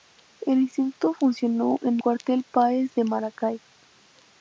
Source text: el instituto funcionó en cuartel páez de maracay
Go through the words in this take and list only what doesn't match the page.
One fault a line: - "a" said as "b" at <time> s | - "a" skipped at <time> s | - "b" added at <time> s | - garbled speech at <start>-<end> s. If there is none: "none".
none